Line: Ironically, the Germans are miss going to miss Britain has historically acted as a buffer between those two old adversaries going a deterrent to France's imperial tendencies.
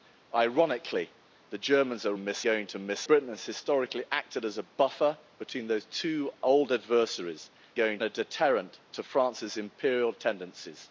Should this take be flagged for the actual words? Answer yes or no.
no